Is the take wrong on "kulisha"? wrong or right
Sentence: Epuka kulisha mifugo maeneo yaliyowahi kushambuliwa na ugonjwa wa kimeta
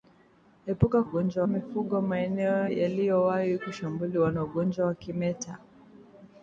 wrong